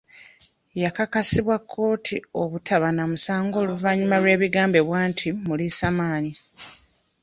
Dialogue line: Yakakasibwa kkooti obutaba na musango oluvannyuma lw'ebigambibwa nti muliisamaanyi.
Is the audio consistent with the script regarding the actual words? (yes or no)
yes